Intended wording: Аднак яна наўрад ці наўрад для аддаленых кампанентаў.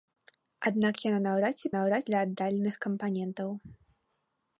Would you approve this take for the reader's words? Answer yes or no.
yes